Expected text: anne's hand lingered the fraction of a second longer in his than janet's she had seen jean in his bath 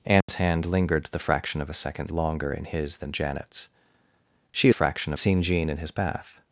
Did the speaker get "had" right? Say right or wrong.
wrong